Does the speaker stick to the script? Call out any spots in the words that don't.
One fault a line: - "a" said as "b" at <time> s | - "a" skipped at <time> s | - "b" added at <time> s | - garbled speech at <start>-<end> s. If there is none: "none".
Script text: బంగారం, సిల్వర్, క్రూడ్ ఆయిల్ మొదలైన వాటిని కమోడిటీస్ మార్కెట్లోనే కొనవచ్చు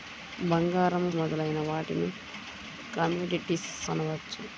- "సిల్వర్ క్రూడ్ ఆయిల్" skipped at 1.0 s
- "మార్కెట్లోనే" skipped at 3.7 s